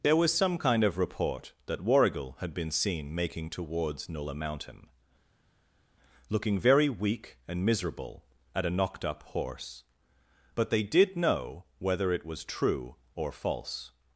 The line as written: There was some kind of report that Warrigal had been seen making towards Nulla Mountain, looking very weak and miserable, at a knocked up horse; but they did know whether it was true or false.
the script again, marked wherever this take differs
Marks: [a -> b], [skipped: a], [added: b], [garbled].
There was some kind of report that Warrigal had been seen making towards Nulla Mountain, looking very weak and miserable, at a knocked up horse; but they did know whether it was true or false.